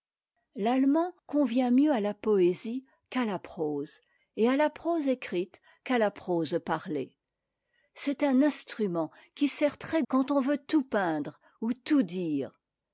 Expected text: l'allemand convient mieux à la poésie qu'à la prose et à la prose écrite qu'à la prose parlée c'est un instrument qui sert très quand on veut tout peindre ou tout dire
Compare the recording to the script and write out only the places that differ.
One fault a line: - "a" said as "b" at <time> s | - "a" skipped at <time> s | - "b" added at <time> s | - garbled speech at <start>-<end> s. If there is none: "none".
none